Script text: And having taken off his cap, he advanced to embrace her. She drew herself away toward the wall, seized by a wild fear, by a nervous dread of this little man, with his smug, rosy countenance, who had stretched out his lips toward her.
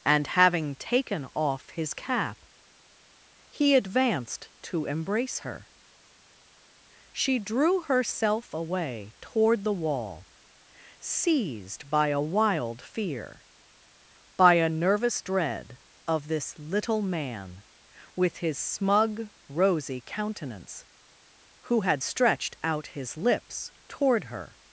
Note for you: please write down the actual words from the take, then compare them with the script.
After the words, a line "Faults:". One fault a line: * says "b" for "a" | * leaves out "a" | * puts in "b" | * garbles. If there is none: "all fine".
And having taken off his cap, he advanced to embrace her. She drew herself away toward the wall, seized by a wild fear, by a nervous dread of this little man, with his smug, rosy countenance, who had stretched out his lips toward her.
Faults:
all fine